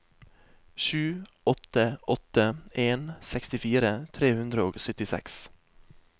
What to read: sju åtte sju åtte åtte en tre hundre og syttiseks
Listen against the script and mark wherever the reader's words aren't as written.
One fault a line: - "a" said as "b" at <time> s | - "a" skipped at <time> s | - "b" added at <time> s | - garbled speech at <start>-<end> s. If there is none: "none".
- "sju" skipped at 2.0 s
- "åtte en" said as "en sekstifire" at 2.7 s